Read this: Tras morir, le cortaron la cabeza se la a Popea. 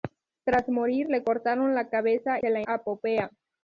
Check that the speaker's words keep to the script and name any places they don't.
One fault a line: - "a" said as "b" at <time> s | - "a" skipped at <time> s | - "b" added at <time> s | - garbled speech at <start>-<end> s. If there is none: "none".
none